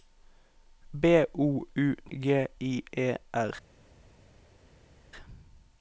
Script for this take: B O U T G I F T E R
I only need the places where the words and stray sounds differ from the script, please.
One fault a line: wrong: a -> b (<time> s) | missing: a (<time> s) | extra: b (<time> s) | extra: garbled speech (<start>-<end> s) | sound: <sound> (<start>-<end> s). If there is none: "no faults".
missing: T (1.9 s)
missing: F T (2.8 s)